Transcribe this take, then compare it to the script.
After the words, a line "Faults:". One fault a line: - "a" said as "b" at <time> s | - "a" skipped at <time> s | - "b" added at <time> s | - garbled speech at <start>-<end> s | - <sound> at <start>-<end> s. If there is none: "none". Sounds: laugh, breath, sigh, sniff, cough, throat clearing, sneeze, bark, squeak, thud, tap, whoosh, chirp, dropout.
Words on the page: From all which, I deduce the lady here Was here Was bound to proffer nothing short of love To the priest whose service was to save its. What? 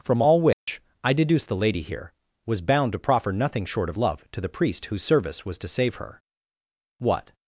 From all which, I deduce the lady here Was bound to proffer nothing short of love To the priest whose service was to save her. What?
Faults:
- dropout at 0.5-0.7 s
- "here Was" skipped at 2.6 s
- "its" said as "her" at 5.9 s